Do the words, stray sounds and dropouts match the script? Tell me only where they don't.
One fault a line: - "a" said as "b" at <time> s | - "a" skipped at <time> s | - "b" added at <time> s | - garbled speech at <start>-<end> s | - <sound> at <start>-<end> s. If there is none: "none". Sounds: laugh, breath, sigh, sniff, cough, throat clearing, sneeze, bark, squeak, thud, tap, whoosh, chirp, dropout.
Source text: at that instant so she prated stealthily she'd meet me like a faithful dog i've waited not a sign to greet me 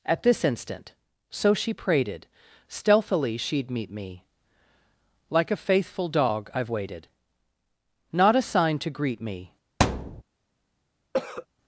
- "that" said as "this" at 0.2 s
- thud at 9.8-10.2 s
- cough at 11.1-11.5 s